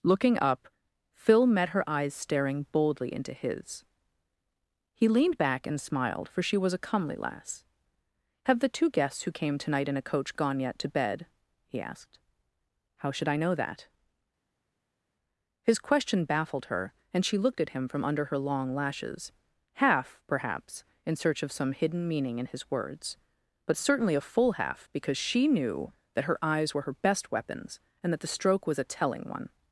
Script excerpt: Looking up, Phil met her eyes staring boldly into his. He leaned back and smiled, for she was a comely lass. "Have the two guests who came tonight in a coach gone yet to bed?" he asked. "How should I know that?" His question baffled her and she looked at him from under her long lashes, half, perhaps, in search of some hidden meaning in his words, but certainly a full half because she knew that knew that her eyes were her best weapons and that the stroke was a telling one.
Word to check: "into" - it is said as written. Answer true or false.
true